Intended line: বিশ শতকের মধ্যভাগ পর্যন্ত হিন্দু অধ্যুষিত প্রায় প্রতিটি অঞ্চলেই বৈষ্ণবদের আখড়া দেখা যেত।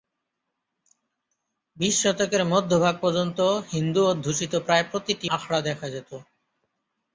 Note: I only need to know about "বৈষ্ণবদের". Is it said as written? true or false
false